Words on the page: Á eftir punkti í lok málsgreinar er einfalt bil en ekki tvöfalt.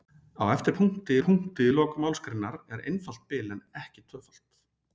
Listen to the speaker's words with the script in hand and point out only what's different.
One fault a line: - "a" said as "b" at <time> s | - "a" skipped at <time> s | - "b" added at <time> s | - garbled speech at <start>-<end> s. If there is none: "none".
- "punkti" added at 1.2 s